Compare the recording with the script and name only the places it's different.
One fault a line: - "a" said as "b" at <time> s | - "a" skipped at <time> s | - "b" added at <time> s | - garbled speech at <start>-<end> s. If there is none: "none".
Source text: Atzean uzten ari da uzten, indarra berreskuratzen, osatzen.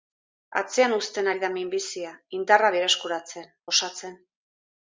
- "uzten" said as "minbizia" at 1.6 s